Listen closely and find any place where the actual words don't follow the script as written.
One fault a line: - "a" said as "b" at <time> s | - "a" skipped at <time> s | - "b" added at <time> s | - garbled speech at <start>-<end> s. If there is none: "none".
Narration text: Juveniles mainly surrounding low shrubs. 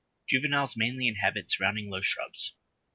- "inhabit" added at 1.1 s